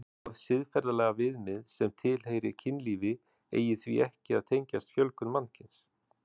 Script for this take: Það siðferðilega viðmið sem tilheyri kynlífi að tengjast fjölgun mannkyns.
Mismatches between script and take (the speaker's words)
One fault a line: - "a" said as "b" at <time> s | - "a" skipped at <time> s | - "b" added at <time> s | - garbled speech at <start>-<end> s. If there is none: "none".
- "eigi því ekki" added at 3.6 s